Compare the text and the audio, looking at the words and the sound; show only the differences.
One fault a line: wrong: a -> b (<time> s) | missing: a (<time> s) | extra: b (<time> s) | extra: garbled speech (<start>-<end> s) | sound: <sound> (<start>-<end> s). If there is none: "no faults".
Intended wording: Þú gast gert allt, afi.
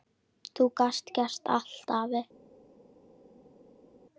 no faults